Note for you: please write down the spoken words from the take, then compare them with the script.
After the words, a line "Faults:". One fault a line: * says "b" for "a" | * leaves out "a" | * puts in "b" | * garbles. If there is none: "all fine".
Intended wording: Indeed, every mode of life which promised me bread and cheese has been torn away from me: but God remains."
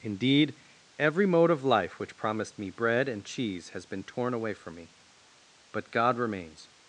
Indeed, every mode of life which promised me bread and cheese has been torn away from me: but God remains."
Faults:
all fine